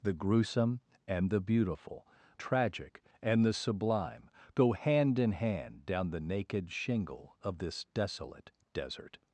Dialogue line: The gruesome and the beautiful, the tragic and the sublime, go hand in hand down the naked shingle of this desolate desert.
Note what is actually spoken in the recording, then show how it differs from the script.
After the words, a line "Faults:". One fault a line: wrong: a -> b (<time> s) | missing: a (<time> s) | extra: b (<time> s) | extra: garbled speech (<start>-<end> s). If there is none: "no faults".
The gruesome and the beautiful, tragic and the sublime, go hand in hand down the naked shingle of this desolate desert.
Faults:
missing: the (2.1 s)